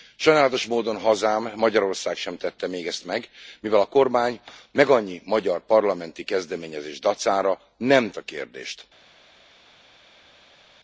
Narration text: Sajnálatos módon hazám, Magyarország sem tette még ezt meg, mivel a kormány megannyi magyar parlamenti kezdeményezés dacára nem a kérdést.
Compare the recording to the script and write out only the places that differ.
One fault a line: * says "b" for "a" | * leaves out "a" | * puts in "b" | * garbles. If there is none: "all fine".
all fine